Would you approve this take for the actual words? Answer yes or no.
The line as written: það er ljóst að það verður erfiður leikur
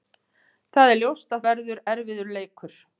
no